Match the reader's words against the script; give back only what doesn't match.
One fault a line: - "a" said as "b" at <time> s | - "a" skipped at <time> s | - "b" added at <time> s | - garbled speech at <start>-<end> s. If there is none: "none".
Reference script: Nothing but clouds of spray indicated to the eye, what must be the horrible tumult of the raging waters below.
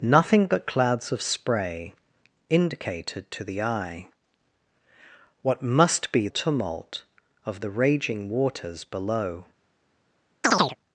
- "the horrible" skipped at 6.3 s